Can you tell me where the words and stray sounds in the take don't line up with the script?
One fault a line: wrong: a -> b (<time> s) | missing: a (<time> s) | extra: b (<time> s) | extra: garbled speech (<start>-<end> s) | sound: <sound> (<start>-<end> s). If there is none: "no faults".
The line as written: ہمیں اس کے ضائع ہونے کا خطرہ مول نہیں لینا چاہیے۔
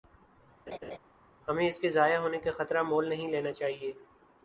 sound: laugh (0.7-1.0 s)